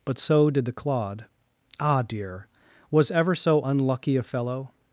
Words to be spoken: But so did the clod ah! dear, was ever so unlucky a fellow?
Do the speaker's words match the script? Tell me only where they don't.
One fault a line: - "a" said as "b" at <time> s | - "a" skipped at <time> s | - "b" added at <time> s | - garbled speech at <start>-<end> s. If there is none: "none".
none